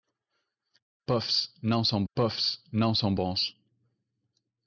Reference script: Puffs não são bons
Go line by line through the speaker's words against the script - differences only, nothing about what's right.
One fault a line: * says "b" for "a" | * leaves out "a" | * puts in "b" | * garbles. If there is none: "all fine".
* puts in "puffs não são"